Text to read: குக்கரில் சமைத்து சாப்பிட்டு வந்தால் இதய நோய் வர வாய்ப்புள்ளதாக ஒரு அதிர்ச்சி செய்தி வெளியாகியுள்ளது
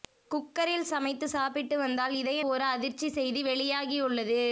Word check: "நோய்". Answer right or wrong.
wrong